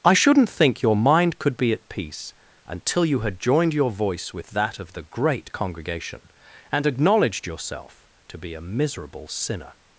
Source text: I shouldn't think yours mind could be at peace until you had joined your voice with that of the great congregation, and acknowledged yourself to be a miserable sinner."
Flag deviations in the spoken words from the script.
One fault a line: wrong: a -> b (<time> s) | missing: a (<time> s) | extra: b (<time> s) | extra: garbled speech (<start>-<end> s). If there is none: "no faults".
wrong: yours -> your (0.8 s)